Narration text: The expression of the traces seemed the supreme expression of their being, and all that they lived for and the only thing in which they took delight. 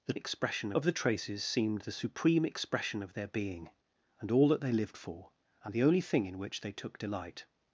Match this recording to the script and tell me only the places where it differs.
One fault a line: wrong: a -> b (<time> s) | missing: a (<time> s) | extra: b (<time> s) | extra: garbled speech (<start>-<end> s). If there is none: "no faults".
no faults